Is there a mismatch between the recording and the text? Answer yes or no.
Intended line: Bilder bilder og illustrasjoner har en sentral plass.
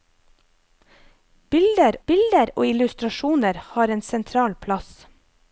no